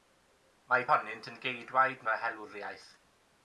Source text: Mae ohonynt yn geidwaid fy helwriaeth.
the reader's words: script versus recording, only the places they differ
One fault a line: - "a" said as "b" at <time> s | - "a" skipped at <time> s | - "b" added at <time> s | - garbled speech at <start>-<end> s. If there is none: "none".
none